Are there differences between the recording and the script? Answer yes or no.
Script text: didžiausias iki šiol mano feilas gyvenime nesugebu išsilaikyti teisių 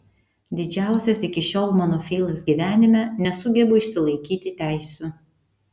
no